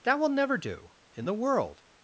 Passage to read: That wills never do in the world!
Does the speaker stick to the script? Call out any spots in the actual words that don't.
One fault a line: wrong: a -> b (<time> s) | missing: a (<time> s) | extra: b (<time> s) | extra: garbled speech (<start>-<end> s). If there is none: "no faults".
wrong: wills -> will (0.2 s)